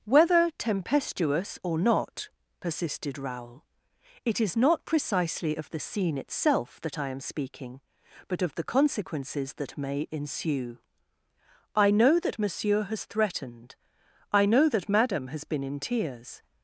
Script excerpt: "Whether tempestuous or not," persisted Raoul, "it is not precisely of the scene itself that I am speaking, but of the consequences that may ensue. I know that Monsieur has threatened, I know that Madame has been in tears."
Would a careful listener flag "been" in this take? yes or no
no